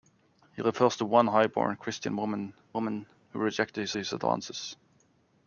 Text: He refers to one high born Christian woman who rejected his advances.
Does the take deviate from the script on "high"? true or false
false